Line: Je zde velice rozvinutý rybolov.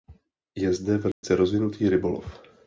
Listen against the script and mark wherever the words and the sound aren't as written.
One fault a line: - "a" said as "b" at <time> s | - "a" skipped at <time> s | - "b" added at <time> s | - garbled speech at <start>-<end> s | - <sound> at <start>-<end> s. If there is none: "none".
- dropout at 1.1-1.2 s